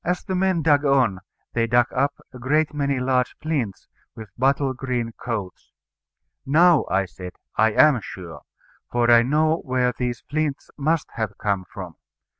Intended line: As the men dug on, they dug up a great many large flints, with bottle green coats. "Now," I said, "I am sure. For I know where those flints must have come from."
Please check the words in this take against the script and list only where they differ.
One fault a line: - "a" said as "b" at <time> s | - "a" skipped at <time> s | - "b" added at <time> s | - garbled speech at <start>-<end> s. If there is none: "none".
- "those" said as "these" at 9.9 s